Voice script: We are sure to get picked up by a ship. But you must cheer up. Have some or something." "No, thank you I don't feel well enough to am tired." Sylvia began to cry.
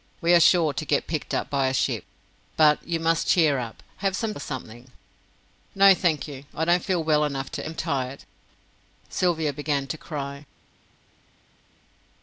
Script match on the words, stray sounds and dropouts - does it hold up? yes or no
yes